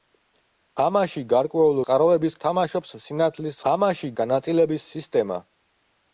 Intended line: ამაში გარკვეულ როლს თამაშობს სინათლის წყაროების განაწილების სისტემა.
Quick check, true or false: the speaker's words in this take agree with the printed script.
false